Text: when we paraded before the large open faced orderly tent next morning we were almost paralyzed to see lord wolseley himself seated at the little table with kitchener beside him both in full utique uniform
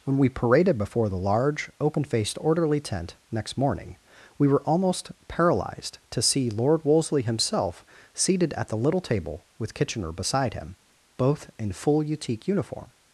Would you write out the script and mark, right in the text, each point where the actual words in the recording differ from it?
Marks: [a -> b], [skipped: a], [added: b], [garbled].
when we paraded before the large open faced orderly tent next morning we were almost paralyzed to see lord wolseley himself seated at the little table with kitchener beside him both in full utique uniform